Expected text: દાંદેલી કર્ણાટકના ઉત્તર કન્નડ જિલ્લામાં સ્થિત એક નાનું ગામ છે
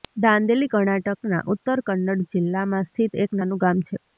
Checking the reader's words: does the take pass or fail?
pass